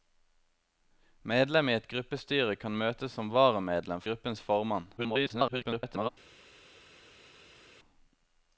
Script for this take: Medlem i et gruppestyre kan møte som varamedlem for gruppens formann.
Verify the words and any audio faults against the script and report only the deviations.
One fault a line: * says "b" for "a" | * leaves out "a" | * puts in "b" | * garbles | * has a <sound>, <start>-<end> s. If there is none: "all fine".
* leaves out "for"
* garbles